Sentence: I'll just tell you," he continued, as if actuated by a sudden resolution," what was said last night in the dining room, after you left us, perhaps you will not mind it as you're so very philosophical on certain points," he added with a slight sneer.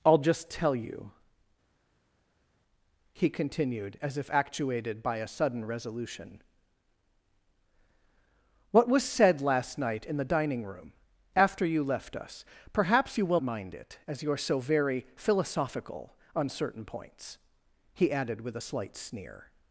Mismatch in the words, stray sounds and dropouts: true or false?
true